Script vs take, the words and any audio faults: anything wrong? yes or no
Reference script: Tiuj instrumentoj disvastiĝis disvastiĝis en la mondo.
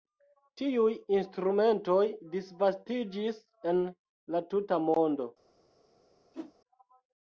yes